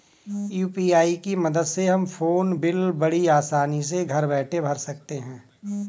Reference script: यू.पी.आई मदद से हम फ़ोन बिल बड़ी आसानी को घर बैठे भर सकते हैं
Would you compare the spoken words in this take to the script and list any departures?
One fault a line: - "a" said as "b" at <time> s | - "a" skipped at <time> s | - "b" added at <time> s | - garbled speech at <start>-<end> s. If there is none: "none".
- "की" added at 1.2 s
- "को" said as "से" at 3.8 s